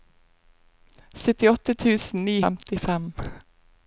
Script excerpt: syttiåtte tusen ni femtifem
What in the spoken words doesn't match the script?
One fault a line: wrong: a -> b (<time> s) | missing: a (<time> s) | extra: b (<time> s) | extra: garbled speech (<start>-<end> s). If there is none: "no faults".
no faults